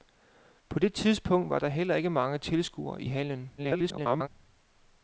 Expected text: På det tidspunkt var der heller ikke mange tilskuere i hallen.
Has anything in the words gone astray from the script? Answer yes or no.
yes